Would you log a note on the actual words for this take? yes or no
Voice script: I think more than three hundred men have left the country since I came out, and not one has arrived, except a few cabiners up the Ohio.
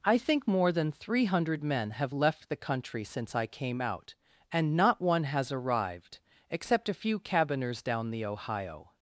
yes